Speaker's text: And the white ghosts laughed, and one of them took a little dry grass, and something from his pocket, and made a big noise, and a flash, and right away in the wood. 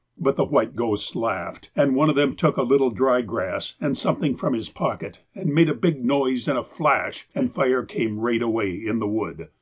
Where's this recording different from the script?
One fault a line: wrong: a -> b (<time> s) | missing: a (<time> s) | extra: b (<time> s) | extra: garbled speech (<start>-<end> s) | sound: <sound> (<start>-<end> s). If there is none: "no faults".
wrong: And -> But (0.2 s)
extra: fire came (7.5 s)